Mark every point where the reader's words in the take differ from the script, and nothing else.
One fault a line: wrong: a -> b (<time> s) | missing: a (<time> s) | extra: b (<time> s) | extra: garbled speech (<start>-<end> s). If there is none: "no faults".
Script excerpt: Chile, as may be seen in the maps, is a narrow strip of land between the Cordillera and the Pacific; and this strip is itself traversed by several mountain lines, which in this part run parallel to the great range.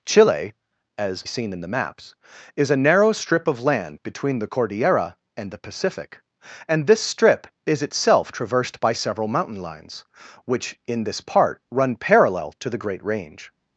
missing: may be (1.3 s)